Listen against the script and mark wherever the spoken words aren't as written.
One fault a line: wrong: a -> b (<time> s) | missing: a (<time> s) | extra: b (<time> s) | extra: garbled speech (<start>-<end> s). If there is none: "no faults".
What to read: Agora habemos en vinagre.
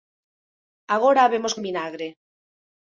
no faults